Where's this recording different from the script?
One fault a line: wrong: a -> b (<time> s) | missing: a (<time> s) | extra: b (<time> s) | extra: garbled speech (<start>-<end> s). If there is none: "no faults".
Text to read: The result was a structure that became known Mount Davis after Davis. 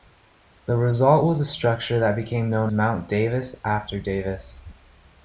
no faults